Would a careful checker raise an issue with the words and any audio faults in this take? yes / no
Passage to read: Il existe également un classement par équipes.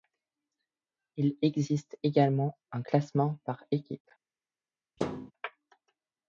yes